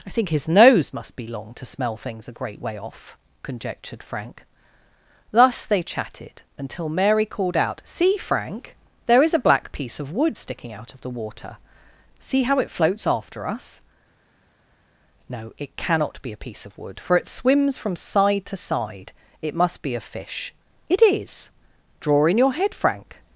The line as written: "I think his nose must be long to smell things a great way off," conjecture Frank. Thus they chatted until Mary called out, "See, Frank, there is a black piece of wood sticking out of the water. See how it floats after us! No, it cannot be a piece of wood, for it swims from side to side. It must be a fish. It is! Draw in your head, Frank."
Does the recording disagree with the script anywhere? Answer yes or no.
yes